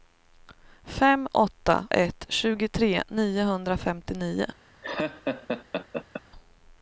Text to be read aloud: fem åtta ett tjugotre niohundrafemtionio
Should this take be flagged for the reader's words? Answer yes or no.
no